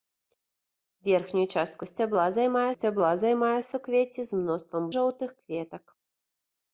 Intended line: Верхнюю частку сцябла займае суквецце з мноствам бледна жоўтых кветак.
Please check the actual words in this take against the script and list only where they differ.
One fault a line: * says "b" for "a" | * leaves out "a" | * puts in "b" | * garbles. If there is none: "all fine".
* puts in "сцябла займае"
* leaves out "бледна"